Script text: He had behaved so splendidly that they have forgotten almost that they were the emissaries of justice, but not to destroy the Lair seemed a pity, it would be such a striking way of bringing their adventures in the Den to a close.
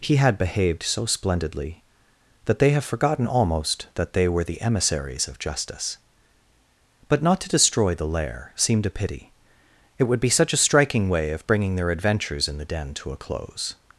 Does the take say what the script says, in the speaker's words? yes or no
yes